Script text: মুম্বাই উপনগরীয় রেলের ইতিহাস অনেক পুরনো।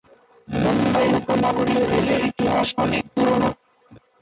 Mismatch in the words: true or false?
false